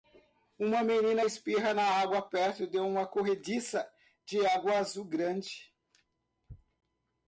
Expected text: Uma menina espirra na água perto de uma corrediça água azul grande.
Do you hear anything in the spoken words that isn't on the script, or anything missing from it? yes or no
yes